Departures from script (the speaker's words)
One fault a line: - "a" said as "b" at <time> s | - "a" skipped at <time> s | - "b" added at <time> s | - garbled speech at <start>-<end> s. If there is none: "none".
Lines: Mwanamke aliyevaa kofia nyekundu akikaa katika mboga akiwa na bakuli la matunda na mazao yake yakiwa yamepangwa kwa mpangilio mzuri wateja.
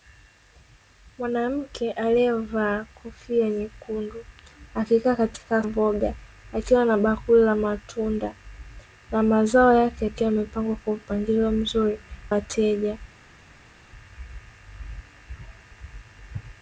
none